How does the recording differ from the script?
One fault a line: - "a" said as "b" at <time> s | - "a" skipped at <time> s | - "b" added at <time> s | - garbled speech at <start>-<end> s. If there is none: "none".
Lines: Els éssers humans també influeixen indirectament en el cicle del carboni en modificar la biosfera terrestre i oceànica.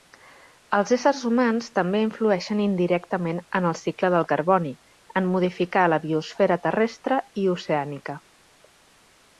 none